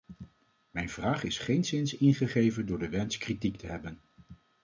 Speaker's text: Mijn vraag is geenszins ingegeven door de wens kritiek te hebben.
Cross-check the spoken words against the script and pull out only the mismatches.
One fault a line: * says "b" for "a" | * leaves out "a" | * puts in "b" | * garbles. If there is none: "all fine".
all fine